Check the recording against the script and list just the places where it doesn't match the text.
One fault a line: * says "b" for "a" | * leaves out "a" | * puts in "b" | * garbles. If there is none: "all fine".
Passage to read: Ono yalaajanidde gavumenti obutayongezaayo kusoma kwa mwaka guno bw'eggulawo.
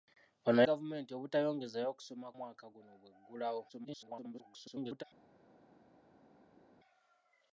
* leaves out "yalaajanidde"
* leaves out "kwa"
* garbles